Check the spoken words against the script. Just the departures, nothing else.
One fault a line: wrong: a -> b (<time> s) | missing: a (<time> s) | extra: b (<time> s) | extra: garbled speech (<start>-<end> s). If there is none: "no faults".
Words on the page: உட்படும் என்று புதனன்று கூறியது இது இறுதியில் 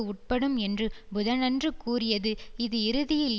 no faults